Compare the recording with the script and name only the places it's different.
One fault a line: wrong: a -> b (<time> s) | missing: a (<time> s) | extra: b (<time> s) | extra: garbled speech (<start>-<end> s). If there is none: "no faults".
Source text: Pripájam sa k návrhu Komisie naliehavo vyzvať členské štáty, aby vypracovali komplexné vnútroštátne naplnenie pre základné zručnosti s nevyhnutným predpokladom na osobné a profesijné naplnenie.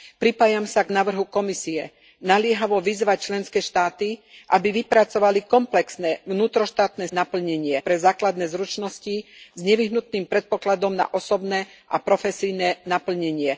no faults